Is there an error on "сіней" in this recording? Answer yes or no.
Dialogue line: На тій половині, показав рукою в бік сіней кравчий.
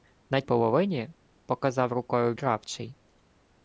yes